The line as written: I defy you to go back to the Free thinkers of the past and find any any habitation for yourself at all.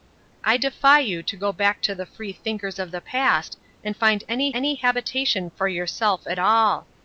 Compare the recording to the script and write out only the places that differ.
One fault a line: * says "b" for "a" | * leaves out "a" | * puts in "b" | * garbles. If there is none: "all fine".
all fine